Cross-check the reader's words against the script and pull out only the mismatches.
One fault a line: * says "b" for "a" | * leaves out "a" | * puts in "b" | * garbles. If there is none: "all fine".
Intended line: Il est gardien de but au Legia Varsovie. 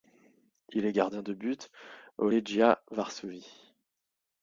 all fine